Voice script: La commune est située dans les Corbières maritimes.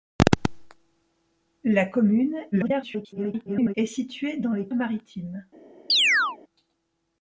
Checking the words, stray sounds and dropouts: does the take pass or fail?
fail